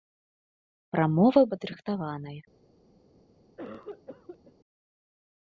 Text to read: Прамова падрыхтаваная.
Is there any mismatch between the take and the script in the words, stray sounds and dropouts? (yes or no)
yes